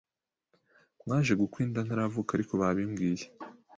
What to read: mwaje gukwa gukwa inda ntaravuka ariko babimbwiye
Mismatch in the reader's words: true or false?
true